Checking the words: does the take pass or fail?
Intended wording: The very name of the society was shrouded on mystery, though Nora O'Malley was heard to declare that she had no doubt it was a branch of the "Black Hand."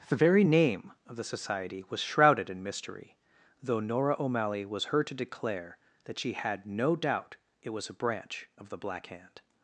fail